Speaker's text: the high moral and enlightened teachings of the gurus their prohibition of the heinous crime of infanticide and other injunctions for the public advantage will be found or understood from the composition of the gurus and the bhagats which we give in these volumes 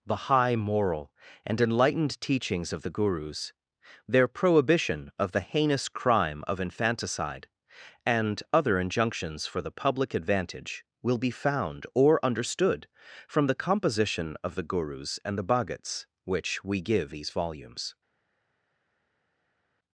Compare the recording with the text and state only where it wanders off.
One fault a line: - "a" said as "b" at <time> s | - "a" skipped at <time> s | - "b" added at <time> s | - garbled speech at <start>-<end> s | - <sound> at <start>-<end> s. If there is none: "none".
- "in" skipped at 17.1 s